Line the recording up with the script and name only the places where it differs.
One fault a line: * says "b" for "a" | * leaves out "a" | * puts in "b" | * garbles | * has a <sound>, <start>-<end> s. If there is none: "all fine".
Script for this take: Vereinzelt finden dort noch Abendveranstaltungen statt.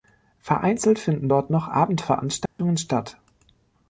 * has a dropout, 2.5-2.6 s